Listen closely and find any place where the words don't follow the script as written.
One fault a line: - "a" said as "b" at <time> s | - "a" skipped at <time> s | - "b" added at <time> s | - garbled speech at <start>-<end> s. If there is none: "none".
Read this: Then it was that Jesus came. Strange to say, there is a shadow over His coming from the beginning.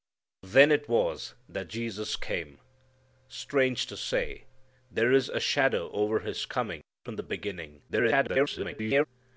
- garbled speech at 7.9-9.1 s